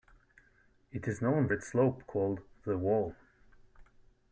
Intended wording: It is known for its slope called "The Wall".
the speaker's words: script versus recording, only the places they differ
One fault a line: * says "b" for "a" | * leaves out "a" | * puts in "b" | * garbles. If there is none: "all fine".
* leaves out "for"